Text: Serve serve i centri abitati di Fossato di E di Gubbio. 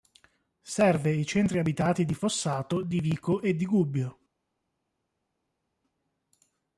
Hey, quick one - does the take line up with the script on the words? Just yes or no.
no